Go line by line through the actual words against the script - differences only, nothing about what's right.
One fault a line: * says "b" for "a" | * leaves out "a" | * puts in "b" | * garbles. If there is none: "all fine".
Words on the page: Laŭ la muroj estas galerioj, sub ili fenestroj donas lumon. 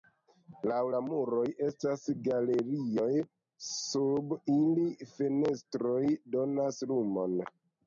all fine